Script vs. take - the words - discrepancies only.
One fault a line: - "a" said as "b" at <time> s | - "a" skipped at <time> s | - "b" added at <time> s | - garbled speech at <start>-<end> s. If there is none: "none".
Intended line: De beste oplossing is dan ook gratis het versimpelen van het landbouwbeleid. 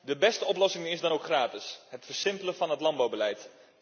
none